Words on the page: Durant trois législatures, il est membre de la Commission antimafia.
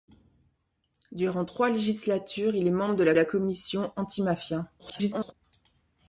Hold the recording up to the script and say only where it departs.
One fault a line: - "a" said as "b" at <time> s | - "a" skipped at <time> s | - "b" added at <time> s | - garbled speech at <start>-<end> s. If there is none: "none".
- "la" added at 3.1 s
- garbled speech at 4.8-5.3 s